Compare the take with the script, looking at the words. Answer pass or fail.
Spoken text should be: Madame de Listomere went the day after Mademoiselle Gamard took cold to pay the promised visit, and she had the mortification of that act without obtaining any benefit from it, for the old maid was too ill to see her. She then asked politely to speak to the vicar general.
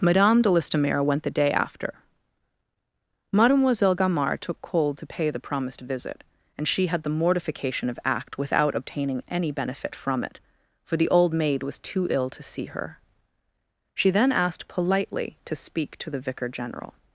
fail